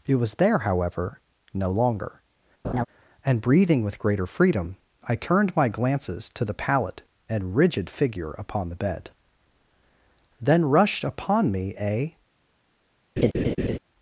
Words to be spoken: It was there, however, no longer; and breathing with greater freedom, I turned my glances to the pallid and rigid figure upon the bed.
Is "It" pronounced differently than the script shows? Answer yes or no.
no